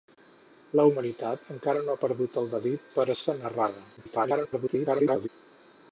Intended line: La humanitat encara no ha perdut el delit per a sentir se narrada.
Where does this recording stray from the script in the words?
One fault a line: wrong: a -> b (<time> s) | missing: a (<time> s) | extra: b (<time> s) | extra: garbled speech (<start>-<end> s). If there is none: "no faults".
missing: sentir (3.2 s)
extra: garbled speech (4.0-5.3 s)